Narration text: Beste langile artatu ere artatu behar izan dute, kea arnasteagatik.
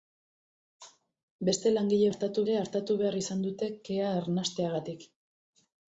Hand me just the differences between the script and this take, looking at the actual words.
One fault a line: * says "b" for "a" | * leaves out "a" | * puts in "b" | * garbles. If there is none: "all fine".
all fine